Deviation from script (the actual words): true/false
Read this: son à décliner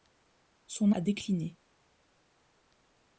false